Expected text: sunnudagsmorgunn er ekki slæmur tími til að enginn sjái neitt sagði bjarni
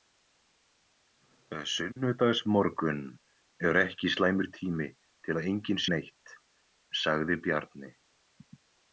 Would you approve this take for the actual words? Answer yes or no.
no